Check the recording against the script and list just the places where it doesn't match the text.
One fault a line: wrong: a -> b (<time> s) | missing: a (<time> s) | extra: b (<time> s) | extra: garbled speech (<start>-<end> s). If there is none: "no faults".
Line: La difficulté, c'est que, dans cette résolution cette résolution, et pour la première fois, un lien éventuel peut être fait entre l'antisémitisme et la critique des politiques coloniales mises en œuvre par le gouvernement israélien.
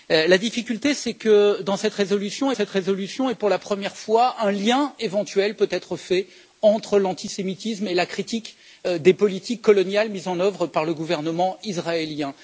no faults